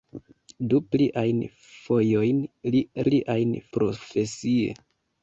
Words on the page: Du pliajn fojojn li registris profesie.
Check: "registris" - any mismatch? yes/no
yes